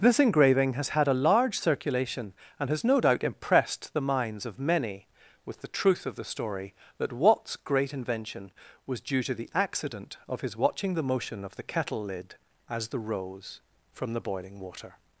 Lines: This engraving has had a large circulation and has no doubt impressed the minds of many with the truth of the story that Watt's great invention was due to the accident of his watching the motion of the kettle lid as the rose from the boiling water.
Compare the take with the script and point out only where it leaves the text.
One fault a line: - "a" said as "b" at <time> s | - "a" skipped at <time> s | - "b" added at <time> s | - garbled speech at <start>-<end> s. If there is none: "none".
none